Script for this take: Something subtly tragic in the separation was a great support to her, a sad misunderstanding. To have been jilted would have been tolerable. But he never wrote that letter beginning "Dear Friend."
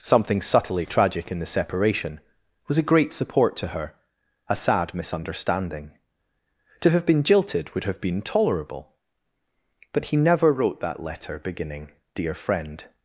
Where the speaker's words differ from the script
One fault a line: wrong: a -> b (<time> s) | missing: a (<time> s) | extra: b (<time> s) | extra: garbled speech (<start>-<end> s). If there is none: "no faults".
no faults